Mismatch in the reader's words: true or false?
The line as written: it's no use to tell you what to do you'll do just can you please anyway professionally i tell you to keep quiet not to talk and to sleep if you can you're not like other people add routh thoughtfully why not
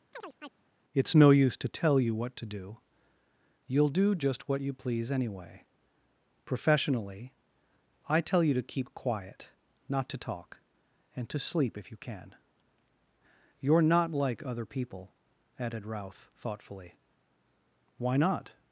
true